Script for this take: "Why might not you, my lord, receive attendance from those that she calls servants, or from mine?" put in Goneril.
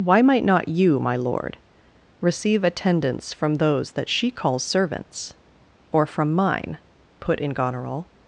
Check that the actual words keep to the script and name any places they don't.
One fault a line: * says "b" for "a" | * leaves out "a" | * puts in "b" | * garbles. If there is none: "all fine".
all fine